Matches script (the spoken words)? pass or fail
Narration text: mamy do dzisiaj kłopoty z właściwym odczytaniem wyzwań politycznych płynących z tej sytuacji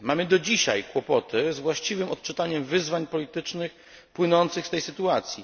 pass